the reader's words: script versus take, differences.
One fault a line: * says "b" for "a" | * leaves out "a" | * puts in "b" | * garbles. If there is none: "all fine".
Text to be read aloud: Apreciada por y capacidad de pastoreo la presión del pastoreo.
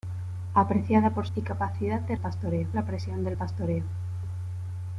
all fine